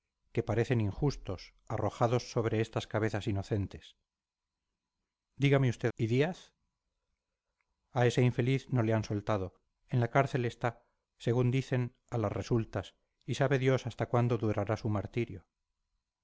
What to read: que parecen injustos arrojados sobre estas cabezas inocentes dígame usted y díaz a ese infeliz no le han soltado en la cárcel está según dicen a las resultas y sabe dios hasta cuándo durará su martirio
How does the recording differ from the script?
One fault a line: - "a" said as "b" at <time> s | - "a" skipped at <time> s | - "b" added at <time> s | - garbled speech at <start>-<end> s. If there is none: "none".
none